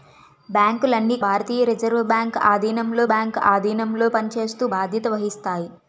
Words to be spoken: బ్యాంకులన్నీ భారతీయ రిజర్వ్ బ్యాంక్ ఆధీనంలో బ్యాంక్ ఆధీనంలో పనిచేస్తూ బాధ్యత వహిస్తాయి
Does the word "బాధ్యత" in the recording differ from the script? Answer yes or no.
no